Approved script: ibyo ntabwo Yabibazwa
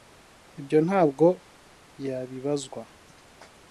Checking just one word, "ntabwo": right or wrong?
right